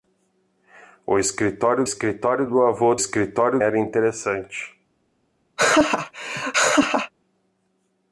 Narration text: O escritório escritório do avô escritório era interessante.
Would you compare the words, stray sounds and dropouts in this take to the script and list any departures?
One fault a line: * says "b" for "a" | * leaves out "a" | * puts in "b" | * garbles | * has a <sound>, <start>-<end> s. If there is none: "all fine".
* has a laugh, 5.6-7.1 s